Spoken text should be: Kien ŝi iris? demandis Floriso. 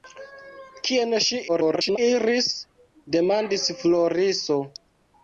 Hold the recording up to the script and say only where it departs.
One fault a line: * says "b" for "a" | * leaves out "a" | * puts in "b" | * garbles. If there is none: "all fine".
* garbles